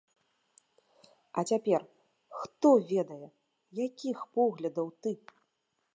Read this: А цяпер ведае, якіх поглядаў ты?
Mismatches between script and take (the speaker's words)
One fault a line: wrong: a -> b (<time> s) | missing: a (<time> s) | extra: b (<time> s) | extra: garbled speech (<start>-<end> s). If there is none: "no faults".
extra: хто (2.4 s)